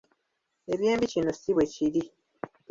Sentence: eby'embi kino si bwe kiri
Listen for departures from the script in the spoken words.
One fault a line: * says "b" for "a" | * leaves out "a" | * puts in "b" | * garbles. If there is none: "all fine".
all fine